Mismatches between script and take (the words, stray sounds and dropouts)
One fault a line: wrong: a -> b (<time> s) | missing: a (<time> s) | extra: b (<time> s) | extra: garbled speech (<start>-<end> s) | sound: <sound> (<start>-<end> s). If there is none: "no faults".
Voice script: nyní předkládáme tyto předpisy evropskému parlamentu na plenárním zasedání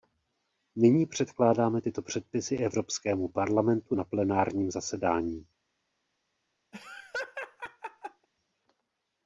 sound: laugh (6.7-8.3 s)